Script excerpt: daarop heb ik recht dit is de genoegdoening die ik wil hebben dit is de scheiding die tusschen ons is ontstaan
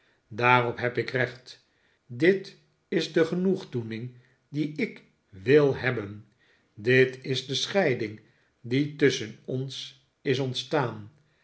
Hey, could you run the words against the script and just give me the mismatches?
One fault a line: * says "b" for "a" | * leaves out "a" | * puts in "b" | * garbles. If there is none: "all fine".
all fine